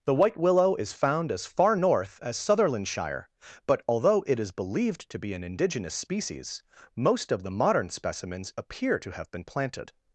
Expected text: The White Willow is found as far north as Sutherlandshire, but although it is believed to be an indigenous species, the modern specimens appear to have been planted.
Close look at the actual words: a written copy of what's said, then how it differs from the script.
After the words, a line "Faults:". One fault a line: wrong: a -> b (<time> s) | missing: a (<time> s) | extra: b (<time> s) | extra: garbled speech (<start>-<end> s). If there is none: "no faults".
The White Willow is found as far north as Sutherlandshire, but although it is believed to be an indigenous species, most of the modern specimens appear to have been planted.
Faults:
extra: most of (7.0 s)